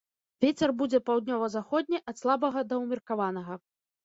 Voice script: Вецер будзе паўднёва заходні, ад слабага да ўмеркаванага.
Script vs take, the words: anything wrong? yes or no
no